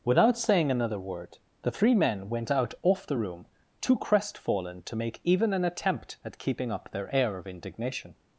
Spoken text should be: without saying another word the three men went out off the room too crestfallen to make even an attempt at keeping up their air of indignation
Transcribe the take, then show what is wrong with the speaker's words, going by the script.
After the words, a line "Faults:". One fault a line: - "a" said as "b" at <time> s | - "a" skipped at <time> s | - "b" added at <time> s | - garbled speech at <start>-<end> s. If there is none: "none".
without saying another word the three men went out off the room too crestfallen to make even an attempt at keeping up their air of indignation
Faults:
none